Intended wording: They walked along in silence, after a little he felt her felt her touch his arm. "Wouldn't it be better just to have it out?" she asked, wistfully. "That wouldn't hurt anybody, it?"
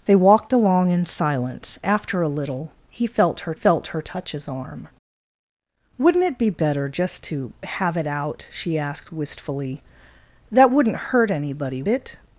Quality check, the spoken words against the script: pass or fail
pass